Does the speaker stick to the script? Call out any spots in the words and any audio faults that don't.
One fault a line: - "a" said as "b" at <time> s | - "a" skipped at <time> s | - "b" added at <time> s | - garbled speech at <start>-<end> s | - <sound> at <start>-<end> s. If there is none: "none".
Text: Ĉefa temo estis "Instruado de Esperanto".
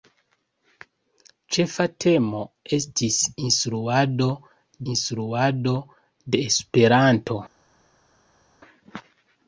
- "instruado" added at 4.9 s